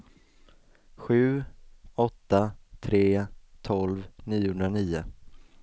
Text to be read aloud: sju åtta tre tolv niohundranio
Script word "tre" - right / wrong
right